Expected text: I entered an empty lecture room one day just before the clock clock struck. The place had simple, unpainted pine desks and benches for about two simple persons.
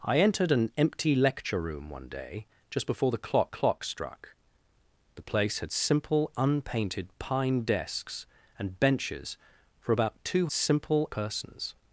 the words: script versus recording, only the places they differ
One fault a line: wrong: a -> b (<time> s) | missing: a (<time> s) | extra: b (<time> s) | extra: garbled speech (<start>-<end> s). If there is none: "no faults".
no faults